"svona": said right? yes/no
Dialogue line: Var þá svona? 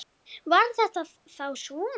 yes